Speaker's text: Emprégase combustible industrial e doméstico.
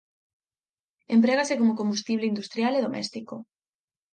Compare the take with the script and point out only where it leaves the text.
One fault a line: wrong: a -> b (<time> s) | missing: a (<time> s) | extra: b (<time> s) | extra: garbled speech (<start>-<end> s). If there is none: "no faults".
extra: como (1.6 s)